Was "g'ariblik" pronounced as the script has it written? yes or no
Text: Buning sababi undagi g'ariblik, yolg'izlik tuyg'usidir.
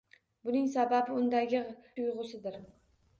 no